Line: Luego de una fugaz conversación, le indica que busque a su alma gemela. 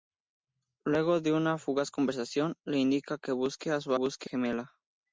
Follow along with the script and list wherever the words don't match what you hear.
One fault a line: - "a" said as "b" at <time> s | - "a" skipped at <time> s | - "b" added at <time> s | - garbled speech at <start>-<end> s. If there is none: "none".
- "alma" said as "busque" at 3.9 s